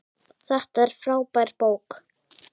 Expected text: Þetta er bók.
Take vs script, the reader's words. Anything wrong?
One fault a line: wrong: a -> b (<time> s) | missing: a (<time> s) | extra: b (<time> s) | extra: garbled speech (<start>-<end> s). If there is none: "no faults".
extra: frábær (1.0 s)